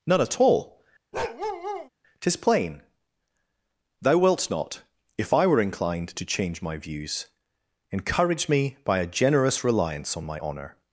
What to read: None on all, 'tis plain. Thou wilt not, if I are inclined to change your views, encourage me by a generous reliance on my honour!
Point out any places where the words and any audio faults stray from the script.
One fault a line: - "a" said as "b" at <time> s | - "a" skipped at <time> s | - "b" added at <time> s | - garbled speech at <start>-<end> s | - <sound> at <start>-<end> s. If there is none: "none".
- "on" said as "at" at 0.2 s
- bark at 1.1-1.9 s
- "are" said as "were" at 5.5 s
- "your" said as "my" at 6.6 s